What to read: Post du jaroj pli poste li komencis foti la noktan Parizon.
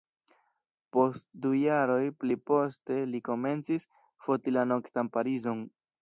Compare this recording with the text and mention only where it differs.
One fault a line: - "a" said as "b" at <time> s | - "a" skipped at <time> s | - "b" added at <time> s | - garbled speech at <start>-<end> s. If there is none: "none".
none